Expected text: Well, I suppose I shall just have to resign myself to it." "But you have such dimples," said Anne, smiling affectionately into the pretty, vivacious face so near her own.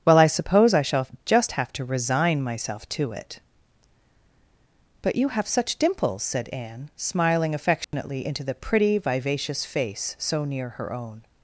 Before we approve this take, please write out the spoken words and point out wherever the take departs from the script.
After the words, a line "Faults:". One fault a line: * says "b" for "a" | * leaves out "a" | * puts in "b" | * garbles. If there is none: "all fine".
Well, I suppose I shall just have to resign myself to it." "But you have such dimples," said Anne, smiling affectionately into the pretty, vivacious face so near her own.
Faults:
all fine